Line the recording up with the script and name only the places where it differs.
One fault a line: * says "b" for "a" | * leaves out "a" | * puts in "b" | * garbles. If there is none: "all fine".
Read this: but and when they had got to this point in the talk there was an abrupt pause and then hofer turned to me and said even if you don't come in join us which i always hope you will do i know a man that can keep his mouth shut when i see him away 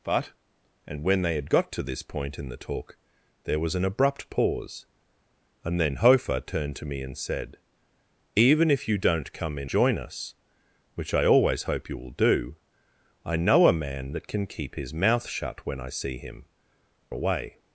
all fine